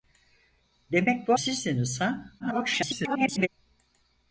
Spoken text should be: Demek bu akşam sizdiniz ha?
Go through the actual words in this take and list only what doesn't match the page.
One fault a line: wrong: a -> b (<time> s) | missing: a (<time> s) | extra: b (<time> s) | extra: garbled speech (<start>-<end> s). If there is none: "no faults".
missing: akşam (1.3 s)
extra: garbled speech (2.4-3.5 s)